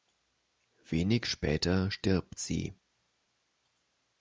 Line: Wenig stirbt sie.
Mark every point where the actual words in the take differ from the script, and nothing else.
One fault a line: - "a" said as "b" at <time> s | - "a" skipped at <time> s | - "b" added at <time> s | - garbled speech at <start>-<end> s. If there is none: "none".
- "später" added at 1.3 s